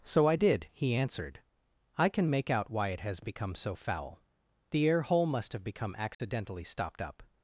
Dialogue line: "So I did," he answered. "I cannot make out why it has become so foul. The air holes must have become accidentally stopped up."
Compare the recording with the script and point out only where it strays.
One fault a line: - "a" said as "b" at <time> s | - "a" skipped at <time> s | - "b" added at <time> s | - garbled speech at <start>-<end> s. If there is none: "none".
- "cannot" said as "can" at 2.1 s
- "holes" said as "hole" at 5.0 s